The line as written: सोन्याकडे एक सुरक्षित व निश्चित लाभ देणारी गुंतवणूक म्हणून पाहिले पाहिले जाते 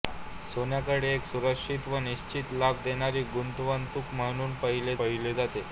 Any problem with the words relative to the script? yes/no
no